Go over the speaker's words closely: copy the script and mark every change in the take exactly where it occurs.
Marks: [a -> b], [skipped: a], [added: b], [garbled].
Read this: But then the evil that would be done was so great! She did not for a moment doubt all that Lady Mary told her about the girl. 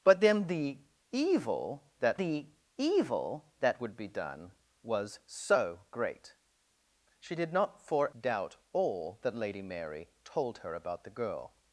But then the evil that [added: the evil that] would be done was so great! She did not for [skipped: a moment] doubt all that Lady Mary told her about the girl.